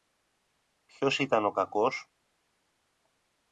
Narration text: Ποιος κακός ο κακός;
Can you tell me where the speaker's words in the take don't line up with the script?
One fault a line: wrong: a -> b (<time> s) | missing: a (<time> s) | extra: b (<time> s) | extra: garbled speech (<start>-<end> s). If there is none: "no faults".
wrong: κακός -> ήταν (1.2 s)